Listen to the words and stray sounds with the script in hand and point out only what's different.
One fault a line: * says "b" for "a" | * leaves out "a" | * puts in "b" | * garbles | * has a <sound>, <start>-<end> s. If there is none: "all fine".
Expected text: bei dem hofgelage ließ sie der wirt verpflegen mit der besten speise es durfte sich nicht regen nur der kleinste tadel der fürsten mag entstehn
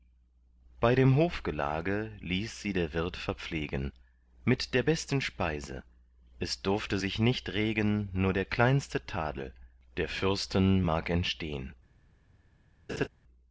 * has a laugh, 12.9-13.1 s